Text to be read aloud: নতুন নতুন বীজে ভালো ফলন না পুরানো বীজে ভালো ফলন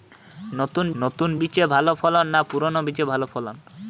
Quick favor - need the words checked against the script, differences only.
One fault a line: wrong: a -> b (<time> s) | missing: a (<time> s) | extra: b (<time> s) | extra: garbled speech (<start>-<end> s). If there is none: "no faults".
no faults